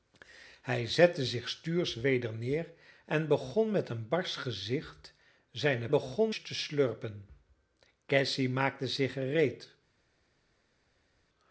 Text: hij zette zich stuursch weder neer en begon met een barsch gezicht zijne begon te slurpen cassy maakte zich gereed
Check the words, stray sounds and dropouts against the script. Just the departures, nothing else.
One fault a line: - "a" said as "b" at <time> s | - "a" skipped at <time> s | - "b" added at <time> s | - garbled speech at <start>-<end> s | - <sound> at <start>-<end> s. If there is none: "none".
none